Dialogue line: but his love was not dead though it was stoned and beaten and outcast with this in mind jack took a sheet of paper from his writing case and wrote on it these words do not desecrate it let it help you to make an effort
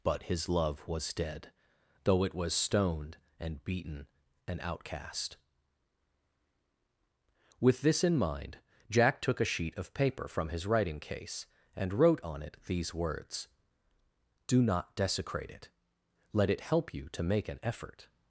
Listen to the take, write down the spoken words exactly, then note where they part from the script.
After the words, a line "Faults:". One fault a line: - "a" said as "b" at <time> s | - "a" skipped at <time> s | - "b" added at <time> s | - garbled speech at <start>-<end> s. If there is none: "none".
but his love was dead though it was stoned and beaten and outcast with this in mind jack took a sheet of paper from his writing case and wrote on it these words do not desecrate it let it help you to make an effort
Faults:
- "not" skipped at 1.1 s